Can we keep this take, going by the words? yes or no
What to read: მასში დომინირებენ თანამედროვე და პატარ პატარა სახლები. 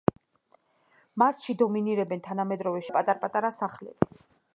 yes